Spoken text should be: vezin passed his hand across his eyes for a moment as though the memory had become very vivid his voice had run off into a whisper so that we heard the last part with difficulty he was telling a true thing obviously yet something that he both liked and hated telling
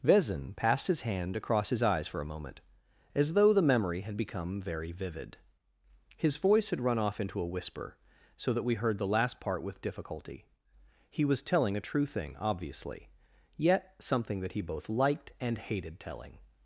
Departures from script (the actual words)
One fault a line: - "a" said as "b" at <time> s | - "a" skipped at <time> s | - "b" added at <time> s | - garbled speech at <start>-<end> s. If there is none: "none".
none